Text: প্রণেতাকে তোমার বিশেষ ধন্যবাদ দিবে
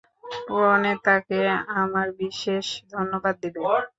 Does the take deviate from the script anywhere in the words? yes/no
yes